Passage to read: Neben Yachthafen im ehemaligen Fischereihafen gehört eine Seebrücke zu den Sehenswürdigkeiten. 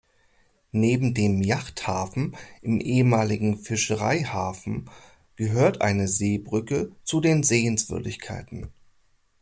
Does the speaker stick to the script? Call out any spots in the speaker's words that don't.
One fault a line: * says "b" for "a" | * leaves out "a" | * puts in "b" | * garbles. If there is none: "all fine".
* puts in "dem"